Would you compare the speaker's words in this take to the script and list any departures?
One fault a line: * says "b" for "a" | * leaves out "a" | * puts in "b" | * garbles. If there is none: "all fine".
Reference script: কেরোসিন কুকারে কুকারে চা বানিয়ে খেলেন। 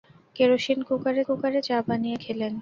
all fine